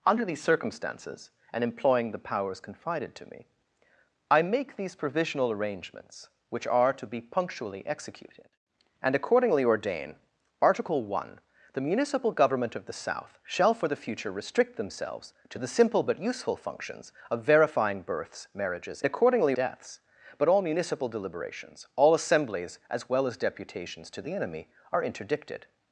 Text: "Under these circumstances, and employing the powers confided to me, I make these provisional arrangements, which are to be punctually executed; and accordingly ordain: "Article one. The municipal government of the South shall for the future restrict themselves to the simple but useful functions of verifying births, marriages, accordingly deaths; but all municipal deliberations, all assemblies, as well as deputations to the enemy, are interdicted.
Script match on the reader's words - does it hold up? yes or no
yes